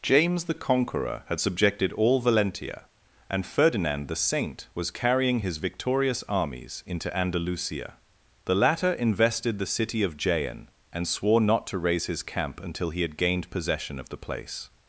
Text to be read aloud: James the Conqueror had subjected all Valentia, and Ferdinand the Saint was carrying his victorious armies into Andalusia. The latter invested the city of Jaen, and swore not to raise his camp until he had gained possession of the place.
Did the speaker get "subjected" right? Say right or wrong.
right